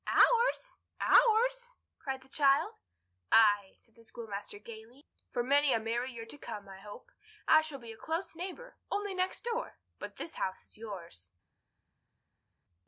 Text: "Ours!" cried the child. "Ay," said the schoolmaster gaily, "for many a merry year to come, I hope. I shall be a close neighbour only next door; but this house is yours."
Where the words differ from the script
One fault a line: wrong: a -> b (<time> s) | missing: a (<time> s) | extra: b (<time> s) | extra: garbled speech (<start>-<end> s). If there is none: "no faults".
extra: ours (1.0 s)